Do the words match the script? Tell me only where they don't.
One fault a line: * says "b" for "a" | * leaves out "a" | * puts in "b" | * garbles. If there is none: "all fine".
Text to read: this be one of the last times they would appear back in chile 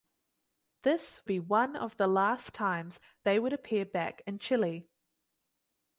all fine